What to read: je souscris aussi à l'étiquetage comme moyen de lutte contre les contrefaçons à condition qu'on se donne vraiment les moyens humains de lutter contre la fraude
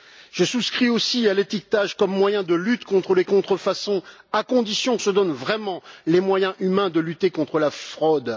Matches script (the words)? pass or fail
fail